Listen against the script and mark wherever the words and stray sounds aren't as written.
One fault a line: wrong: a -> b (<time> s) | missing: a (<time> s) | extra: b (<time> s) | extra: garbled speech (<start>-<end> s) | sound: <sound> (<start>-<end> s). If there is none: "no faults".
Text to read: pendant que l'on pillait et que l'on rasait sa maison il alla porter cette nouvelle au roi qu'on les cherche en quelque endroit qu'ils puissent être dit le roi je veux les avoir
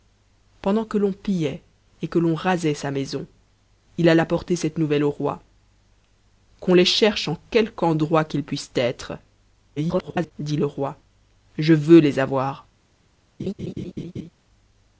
extra: garbled speech (9.8-10.3 s)
sound: laugh (13.4-14.3 s)